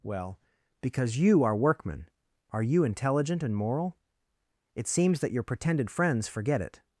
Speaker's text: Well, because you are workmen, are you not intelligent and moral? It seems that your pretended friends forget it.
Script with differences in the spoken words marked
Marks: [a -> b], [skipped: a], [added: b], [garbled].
Well, because you are workmen, are you [skipped: not] intelligent and moral? It seems that your pretended friends forget it.